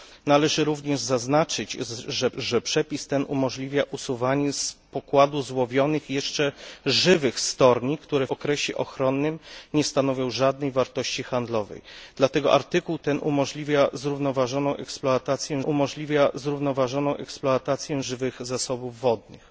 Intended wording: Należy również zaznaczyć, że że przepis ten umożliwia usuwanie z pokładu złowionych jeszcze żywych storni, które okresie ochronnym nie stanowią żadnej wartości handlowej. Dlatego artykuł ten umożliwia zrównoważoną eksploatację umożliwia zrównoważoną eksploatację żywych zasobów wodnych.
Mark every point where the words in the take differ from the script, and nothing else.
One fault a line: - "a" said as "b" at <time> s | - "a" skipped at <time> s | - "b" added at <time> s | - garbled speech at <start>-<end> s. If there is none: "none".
none